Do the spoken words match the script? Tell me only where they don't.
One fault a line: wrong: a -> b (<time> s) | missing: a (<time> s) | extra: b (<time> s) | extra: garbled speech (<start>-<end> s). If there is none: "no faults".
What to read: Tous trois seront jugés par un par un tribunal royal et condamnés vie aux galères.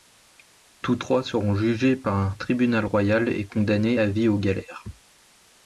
missing: par un (2.3 s)
extra: à (4.0 s)